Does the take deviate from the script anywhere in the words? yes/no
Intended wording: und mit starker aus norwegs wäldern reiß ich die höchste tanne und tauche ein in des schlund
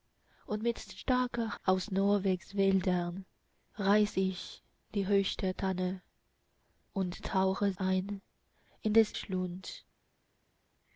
no